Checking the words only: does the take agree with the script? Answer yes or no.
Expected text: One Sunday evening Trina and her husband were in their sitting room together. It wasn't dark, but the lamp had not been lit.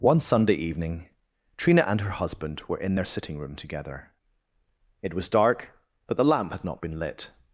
no